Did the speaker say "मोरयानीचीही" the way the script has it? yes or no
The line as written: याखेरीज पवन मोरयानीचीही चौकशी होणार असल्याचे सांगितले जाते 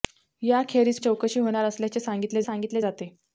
no